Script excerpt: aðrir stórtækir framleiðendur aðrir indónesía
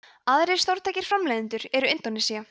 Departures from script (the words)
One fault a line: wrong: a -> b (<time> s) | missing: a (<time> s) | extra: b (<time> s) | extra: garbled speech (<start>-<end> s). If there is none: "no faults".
wrong: aðrir -> eru (1.8 s)